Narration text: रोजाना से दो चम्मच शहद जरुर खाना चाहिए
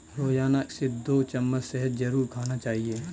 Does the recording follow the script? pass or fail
pass